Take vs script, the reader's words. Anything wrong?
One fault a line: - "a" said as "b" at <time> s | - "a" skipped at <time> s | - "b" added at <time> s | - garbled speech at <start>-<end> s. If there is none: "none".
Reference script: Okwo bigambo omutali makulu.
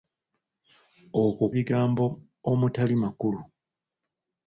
none